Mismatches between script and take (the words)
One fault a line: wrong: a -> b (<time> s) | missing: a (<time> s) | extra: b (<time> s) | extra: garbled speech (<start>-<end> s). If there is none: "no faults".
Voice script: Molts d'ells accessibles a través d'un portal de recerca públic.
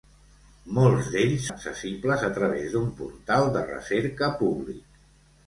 no faults